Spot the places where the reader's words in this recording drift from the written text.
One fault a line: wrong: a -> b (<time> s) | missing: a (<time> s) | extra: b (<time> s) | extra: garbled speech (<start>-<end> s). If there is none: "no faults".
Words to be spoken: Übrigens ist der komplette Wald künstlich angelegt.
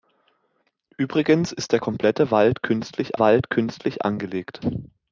extra: Wald künstlich (3.2 s)